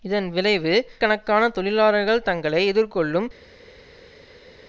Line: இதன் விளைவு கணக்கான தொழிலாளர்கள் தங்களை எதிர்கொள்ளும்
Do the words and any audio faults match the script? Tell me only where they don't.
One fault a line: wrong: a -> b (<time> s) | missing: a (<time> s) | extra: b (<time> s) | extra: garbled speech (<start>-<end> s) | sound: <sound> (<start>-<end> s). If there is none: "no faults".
no faults